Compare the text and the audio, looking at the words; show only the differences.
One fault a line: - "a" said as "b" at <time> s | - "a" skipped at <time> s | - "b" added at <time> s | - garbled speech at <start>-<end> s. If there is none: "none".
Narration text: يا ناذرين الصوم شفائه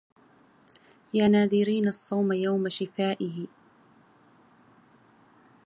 - "يوم" added at 2.3 s